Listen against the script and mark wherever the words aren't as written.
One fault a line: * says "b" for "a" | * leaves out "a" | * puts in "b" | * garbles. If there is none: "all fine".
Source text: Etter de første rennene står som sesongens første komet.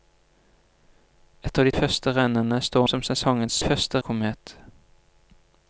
all fine